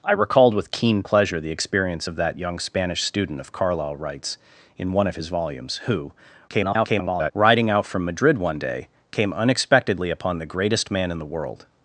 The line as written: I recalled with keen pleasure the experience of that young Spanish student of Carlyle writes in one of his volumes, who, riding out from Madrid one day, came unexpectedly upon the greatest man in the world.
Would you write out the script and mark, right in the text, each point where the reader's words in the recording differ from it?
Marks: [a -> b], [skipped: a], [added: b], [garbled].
I recalled with keen pleasure the experience of that young Spanish student of Carlyle writes in one of his volumes, who, [garbled] riding out from Madrid one day, came unexpectedly upon the greatest man in the world.